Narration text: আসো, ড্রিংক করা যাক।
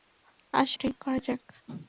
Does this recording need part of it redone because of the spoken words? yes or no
no